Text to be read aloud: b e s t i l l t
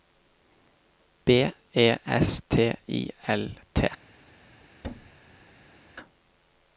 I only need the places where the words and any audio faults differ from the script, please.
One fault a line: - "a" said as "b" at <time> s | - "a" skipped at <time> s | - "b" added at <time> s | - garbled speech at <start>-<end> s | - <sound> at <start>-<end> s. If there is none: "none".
- "l" skipped at 3.5 s
- thud at 4.8-5.8 s